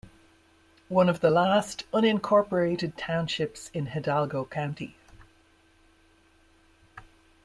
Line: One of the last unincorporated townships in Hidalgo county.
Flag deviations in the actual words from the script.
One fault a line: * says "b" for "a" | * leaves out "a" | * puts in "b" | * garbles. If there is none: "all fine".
all fine